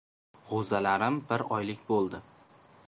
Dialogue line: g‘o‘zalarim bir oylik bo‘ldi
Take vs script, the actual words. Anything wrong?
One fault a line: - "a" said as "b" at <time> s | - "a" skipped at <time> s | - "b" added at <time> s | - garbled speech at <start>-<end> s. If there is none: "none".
none